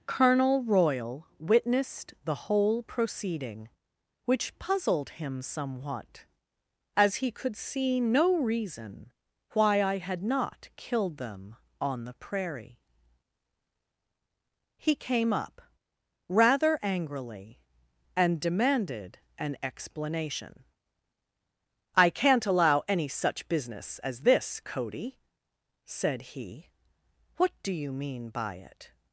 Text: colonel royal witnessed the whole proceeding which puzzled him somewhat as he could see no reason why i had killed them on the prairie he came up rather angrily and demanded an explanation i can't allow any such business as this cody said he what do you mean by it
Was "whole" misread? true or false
false